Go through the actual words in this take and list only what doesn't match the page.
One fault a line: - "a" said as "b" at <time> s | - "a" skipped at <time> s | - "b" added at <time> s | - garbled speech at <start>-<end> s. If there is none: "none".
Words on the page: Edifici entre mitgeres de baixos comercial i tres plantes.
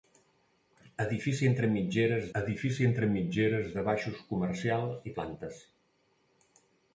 - "edifici entre mitgeres" added at 2.4 s
- "tres" skipped at 5.1 s